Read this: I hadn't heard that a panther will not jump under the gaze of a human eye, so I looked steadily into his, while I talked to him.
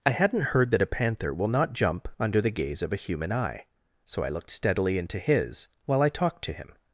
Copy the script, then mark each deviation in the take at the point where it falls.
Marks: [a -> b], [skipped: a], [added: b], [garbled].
I hadn't heard that a panther will not jump under the gaze of a human eye, so I looked steadily into his, while I talked to him.